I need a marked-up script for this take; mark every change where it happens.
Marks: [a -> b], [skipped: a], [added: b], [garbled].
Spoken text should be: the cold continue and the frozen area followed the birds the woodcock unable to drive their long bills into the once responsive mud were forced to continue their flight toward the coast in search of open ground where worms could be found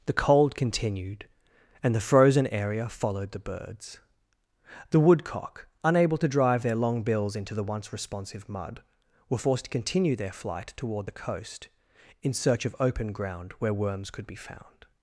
the cold [continue -> continued] and the frozen area followed the birds the woodcock unable to drive their long bills into the once responsive mud were forced to continue their flight toward the coast in search of open ground where worms could be found